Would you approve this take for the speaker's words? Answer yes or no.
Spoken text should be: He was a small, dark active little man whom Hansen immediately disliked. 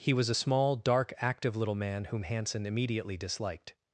yes